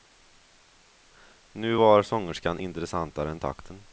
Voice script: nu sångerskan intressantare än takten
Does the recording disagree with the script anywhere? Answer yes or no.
yes